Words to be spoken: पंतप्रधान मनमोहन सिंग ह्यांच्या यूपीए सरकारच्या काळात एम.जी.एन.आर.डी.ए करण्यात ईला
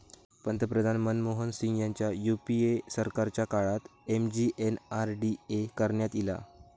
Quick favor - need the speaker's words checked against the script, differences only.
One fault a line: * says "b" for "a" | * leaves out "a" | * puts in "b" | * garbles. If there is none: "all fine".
all fine